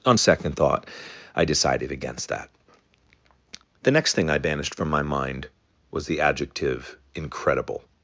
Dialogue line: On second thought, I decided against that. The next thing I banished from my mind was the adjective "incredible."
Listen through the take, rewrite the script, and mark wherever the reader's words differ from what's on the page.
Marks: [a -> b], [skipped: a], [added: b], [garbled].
On second thought, I decided against that. The next thing I banished from my mind was the adjective "incredible."